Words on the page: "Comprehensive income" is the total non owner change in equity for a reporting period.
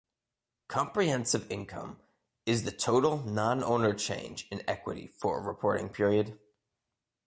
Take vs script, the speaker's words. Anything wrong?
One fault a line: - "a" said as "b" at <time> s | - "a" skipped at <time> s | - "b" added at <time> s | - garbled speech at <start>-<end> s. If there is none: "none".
none